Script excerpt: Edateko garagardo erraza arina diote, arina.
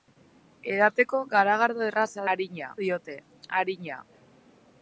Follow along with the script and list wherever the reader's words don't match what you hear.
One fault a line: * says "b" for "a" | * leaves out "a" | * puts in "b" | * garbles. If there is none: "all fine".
all fine